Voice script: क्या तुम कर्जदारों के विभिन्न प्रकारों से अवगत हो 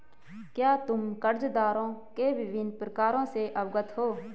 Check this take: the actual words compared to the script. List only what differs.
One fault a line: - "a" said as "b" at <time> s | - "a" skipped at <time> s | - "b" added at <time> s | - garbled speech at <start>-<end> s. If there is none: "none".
none